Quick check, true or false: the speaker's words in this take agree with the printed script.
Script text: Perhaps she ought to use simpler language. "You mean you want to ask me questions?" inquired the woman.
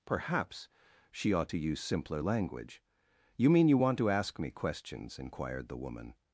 true